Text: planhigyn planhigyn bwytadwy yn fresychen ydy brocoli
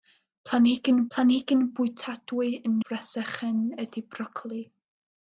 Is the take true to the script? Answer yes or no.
yes